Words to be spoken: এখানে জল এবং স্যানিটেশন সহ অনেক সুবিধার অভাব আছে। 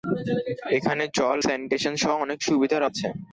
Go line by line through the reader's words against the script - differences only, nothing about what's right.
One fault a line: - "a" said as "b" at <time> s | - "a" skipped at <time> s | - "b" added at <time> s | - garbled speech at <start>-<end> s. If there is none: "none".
- "এবং" skipped at 1.4 s
- "অভাব" skipped at 2.8 s